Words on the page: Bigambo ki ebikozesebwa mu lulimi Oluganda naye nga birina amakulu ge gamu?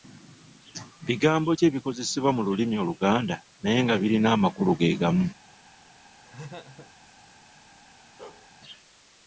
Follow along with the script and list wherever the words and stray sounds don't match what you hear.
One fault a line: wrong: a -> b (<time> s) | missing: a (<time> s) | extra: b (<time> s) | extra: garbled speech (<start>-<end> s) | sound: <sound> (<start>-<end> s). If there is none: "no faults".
sound: laugh (6.2-6.9 s)
sound: bark (8.2-8.5 s)